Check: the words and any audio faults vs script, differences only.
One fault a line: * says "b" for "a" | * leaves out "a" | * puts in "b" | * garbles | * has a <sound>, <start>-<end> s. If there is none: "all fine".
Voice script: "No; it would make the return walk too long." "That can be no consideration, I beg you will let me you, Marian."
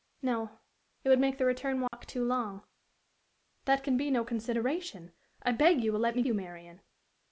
* has a dropout, 1.9-1.9 s